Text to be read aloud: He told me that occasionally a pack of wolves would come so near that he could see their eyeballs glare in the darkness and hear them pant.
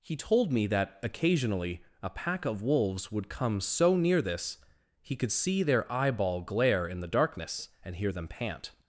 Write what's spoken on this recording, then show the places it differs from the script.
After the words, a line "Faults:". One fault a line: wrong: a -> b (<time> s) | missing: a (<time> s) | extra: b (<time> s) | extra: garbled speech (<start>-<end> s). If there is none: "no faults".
He told me that occasionally a pack of wolves would come so near this he could see their eyeball glare in the darkness and hear them pant.
Faults:
wrong: that -> this (4.2 s)
wrong: eyeballs -> eyeball (5.9 s)